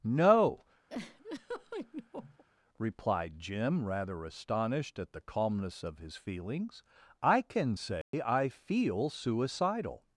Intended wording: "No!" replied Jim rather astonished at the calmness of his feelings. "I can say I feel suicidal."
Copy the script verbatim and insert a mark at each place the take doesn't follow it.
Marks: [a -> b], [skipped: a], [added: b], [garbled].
"No!" replied Jim rather astonished at the calmness of his feelings. "I can say I feel suicidal."